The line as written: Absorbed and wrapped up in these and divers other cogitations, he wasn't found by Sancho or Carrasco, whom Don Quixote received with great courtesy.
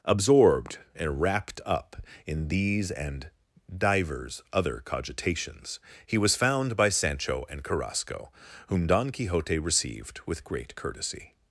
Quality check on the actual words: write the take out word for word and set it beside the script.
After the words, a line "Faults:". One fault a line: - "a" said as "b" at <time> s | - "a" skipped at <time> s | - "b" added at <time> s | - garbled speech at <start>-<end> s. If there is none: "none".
Absorbed and wrapped up in these and divers other cogitations, he was found by Sancho and Carrasco, whom Don Quixote received with great courtesy.
Faults:
- "wasn't" said as "was" at 6.2 s
- "or" said as "and" at 7.5 s